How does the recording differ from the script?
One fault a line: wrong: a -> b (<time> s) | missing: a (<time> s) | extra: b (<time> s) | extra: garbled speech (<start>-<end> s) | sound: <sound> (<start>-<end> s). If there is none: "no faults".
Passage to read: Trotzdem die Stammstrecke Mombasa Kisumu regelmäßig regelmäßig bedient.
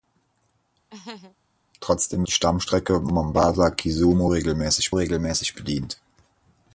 sound: laugh (0.9-1.4 s)